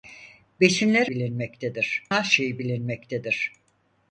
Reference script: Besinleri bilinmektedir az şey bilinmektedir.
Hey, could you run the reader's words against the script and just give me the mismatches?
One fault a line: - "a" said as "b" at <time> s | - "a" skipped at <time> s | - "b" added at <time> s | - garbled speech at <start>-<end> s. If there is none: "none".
none